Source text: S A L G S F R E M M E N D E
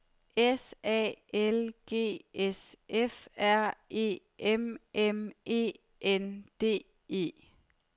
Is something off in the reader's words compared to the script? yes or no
no